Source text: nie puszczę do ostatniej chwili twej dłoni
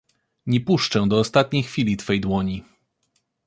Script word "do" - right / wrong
right